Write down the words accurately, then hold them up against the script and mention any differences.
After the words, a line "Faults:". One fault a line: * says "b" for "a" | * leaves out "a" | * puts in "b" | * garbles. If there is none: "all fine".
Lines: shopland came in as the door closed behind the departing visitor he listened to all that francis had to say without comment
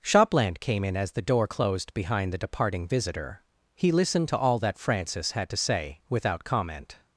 shopland came in as the door closed behind the departing visitor he listened to all that francis had to say without comment
Faults:
all fine